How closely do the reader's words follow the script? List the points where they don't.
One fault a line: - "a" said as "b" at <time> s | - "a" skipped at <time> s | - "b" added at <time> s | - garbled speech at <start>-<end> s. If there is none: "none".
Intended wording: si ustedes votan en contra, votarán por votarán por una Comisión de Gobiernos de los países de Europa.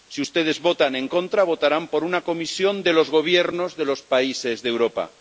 - "votarán por" skipped at 2.0 s
- "los" added at 2.9 s